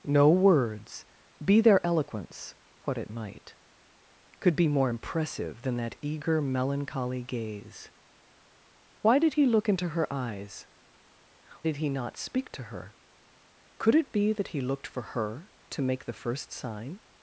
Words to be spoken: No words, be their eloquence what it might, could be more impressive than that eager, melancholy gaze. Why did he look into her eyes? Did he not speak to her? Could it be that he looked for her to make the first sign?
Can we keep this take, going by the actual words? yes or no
yes